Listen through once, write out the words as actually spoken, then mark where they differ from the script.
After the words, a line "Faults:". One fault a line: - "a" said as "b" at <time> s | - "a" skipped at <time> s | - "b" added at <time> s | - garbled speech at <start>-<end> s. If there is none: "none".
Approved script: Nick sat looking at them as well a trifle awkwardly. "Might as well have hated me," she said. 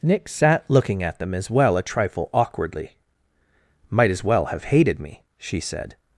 Nick sat looking at them as well a trifle awkwardly. "Might as well have hated me," she said.
Faults:
none